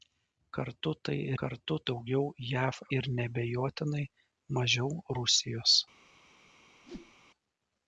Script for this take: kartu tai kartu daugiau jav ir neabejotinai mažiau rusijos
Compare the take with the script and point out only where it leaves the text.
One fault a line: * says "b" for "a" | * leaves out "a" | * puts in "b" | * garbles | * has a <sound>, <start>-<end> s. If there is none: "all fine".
* has a whoosh, 6.8-7.1 s